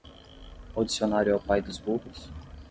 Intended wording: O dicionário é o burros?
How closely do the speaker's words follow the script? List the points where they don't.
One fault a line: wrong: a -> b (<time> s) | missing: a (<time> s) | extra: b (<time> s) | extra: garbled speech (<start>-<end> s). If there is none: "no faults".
extra: pai dos (1.4 s)